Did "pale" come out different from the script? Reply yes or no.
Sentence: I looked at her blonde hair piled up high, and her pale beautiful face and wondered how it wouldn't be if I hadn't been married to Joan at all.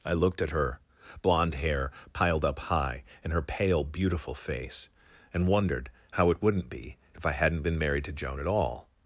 no